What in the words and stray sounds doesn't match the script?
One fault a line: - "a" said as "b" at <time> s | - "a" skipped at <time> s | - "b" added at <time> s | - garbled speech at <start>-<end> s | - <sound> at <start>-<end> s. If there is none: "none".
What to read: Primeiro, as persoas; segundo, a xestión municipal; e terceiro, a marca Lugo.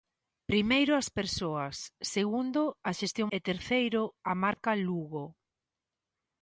- "municipal" skipped at 3.3 s
- dropout at 4.5-4.6 s